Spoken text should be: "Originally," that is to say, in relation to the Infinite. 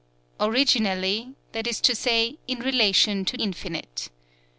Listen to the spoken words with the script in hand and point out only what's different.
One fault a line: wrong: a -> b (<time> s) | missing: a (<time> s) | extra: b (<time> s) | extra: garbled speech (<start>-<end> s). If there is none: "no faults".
missing: the (3.4 s)